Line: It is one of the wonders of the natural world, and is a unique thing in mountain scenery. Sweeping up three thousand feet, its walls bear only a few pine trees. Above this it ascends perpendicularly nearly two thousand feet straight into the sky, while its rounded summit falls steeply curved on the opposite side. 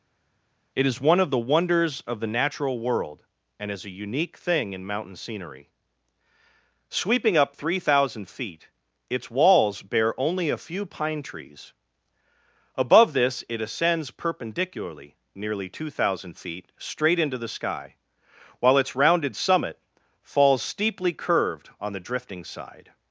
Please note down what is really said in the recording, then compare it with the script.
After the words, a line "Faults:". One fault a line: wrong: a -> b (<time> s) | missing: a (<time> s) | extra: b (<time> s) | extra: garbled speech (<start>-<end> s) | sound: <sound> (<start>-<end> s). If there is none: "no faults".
It is one of the wonders of the natural world, and is a unique thing in mountain scenery. Sweeping up three thousand feet, its walls bear only a few pine trees. Above this it ascends perpendicularly nearly two thousand feet straight into the sky, while its rounded summit falls steeply curved on the drifting side.
Faults:
wrong: opposite -> drifting (22.0 s)